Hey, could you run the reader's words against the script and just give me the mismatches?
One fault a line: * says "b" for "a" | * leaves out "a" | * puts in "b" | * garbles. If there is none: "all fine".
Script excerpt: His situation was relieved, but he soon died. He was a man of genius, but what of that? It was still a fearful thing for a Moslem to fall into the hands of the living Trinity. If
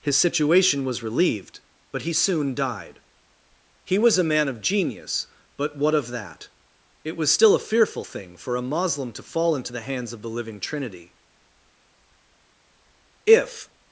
all fine